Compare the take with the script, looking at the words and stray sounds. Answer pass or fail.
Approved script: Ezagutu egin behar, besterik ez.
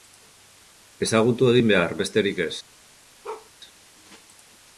fail